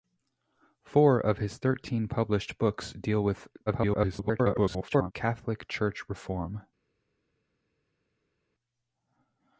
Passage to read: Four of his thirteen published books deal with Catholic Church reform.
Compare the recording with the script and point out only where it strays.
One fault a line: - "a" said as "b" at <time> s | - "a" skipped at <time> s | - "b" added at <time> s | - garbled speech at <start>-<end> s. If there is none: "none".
- garbled speech at 3.7-5.1 s